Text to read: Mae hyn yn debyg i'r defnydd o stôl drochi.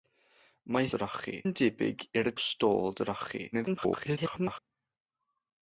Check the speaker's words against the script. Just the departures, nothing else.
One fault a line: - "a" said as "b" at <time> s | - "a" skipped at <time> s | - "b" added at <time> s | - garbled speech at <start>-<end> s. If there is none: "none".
- "hyn" said as "drochi" at 1.0 s
- "defnydd" skipped at 2.3 s
- garbled speech at 3.5-4.6 s